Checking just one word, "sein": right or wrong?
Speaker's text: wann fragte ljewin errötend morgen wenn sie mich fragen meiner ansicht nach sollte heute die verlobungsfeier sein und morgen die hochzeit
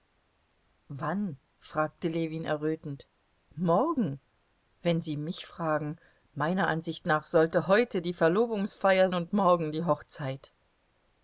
wrong